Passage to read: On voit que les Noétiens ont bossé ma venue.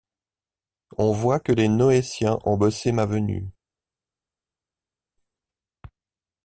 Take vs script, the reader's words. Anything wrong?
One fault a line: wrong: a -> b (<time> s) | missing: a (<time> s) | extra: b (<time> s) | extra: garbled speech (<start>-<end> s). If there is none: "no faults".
no faults